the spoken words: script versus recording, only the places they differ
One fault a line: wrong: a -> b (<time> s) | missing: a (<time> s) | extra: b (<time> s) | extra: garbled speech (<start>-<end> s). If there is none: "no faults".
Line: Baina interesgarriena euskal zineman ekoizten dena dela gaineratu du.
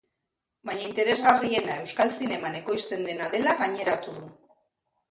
no faults